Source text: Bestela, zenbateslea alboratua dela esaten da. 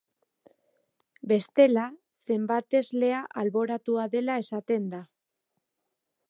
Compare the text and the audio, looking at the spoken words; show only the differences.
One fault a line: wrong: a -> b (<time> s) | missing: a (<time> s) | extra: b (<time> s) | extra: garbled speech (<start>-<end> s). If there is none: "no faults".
no faults